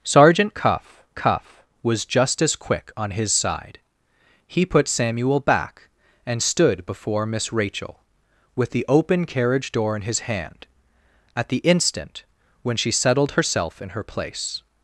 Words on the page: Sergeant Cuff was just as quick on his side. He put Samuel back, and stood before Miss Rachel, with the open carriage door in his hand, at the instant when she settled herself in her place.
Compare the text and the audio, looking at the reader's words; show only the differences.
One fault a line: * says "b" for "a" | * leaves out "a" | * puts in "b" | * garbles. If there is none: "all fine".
* puts in "Cuff"